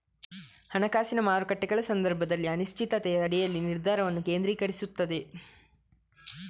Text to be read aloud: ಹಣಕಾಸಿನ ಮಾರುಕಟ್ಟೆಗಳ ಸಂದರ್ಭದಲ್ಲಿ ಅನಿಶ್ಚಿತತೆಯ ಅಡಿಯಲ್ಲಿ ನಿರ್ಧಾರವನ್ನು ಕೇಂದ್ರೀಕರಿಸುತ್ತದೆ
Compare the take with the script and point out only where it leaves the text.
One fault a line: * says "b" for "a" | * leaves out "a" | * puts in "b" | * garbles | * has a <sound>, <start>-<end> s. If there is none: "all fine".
all fine